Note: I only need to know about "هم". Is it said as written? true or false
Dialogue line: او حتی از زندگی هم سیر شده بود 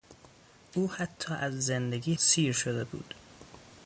false